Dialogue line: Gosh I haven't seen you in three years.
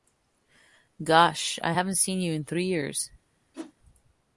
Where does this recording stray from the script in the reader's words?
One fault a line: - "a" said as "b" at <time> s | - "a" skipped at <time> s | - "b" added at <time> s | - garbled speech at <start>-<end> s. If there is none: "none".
none